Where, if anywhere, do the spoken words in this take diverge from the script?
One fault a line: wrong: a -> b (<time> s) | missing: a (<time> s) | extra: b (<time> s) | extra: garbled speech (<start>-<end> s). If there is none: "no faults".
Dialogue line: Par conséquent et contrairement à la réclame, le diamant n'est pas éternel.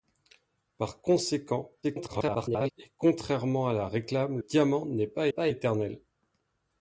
extra: garbled speech (1.8-2.7 s)
missing: le (4.4 s)
extra: pas (5.3 s)